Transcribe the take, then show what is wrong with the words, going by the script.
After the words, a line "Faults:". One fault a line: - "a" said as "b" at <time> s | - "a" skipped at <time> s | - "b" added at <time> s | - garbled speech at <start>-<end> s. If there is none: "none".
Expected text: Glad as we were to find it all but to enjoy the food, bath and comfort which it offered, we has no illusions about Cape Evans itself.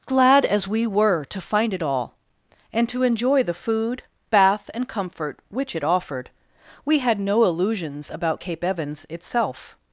Glad as we were to find it all and to enjoy the food, bath and comfort which it offered, we had no illusions about Cape Evans itself.
Faults:
- "but" said as "and" at 2.7 s
- "has" said as "had" at 7.0 s